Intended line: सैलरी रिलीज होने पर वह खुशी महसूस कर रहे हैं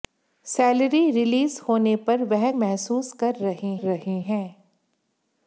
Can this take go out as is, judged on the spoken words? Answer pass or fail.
fail